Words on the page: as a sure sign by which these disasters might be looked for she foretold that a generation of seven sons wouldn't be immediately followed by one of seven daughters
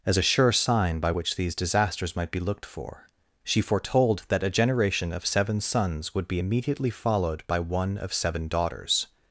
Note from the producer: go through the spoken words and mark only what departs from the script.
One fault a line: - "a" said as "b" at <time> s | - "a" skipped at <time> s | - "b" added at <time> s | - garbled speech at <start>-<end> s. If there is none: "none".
- "wouldn't" said as "would" at 6.2 s